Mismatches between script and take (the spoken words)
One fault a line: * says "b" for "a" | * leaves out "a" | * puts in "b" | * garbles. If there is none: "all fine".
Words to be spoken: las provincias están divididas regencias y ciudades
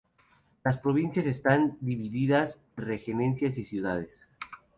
all fine